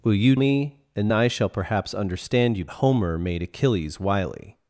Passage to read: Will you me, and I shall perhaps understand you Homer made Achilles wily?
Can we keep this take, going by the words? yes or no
yes